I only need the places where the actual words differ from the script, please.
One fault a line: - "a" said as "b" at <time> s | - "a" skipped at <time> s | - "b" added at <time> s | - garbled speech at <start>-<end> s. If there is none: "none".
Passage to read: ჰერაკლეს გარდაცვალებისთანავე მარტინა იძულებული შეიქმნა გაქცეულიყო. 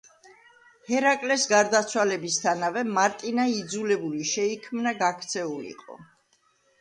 none